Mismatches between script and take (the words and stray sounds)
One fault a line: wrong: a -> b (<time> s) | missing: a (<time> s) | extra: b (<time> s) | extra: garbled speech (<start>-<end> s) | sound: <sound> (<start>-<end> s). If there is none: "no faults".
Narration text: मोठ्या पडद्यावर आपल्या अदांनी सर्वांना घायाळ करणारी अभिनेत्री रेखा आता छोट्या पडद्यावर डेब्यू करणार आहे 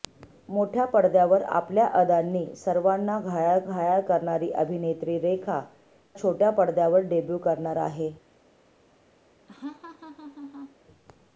extra: घायाळ (3.6 s)
missing: आता (5.6 s)
sound: laugh (9.5-10.8 s)